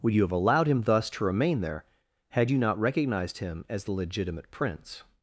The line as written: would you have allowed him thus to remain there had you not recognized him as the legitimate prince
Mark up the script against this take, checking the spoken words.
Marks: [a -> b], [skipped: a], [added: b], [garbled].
would you have allowed him thus to remain there had you not recognized him as the legitimate prince